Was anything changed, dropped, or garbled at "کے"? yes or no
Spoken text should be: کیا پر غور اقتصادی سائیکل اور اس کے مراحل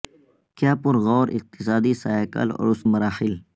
yes